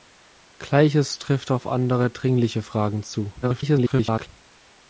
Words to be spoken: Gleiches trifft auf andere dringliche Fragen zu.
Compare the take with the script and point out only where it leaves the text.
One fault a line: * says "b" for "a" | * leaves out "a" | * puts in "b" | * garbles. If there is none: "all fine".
* garbles